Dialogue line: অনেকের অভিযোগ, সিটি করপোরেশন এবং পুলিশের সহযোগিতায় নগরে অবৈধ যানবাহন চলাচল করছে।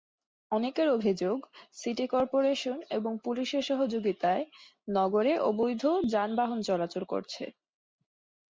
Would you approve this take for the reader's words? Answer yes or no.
yes